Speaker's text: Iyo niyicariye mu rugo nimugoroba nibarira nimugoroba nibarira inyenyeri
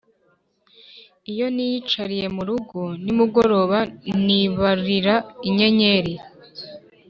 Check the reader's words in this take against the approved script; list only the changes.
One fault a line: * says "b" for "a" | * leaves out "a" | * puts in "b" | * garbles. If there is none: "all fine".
* leaves out "nimugoroba nibarira"